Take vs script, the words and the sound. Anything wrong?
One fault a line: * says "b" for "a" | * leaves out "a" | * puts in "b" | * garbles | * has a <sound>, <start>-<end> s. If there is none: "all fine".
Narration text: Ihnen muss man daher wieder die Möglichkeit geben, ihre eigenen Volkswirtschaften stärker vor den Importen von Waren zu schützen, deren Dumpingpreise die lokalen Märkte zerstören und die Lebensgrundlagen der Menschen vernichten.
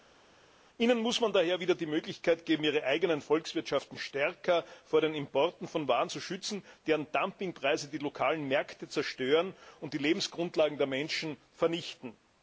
all fine